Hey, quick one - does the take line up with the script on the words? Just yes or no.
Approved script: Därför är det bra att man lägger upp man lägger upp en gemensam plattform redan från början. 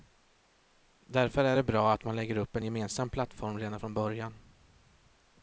no